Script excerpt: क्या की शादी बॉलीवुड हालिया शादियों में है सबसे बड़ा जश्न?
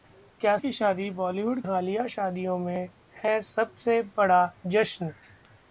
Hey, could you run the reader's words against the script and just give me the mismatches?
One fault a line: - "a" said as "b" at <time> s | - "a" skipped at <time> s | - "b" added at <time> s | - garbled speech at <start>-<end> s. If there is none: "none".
none